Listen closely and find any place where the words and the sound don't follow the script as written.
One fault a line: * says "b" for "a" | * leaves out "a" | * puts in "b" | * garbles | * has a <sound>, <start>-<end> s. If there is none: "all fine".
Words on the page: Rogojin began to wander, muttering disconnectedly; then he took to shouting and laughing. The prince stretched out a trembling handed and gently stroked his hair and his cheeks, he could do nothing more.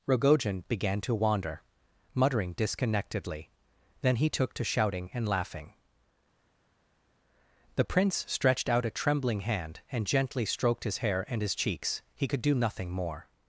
* says "hand" for "handed"